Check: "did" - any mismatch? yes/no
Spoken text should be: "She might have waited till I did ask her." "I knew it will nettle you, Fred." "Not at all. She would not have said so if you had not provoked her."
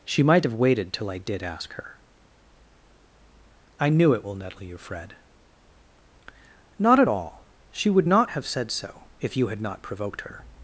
no